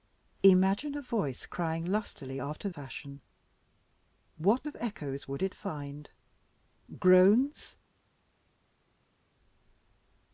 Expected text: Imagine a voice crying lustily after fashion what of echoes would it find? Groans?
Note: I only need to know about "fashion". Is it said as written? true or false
true